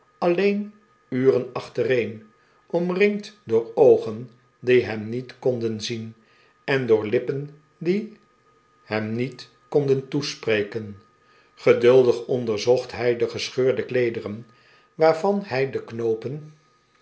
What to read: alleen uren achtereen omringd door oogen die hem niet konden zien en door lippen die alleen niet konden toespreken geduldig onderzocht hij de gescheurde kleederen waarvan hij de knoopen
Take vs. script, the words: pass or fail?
fail